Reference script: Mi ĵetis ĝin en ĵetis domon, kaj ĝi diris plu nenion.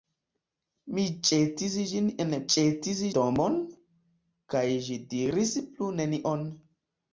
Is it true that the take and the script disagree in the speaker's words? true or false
false